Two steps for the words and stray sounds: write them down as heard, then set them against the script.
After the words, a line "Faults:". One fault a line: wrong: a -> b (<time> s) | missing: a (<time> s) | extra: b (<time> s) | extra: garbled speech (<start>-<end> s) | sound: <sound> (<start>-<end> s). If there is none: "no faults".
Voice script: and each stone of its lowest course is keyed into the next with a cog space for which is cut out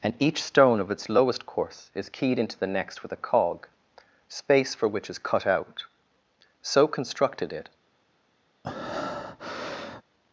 and each stone of its lowest course is keyed into the next with a cog space for which is cut out so constructed it
Faults:
extra: so constructed it (6.6 s)
sound: breath (8.6-10.0 s)